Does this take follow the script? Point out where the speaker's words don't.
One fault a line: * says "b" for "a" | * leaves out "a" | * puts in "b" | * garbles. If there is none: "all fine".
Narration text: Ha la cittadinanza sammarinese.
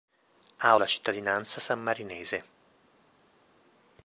all fine